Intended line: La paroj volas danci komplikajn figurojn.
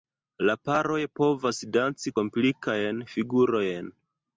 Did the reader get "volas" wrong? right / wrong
wrong